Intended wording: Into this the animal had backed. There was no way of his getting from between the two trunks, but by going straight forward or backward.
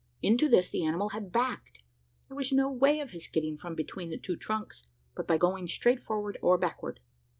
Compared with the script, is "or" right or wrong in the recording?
right